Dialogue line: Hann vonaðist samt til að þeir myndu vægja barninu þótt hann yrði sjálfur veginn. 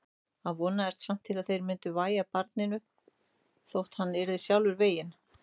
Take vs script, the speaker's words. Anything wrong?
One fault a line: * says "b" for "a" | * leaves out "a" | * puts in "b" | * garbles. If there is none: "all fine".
all fine